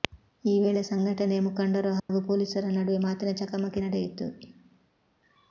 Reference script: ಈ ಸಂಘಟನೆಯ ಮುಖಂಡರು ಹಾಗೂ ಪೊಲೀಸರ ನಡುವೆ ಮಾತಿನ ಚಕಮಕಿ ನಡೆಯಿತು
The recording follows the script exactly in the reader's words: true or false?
false